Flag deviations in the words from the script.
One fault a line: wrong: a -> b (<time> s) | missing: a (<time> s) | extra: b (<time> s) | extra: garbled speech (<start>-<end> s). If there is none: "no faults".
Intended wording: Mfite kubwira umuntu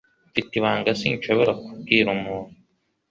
extra: ibanga sinshobora (0.6 s)